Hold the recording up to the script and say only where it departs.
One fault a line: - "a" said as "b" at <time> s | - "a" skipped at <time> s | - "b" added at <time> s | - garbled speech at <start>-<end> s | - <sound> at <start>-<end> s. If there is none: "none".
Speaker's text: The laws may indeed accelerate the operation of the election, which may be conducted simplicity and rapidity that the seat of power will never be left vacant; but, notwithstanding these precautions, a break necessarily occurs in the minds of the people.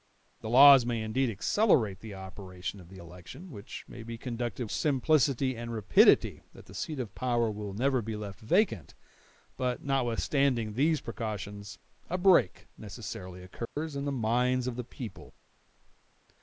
- dropout at 13.7-13.8 s